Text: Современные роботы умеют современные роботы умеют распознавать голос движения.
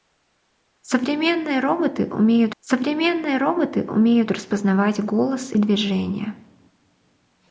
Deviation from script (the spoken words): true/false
false